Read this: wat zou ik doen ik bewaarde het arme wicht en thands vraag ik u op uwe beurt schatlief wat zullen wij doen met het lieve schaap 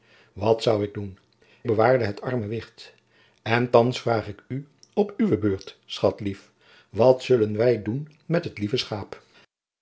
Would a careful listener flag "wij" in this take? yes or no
no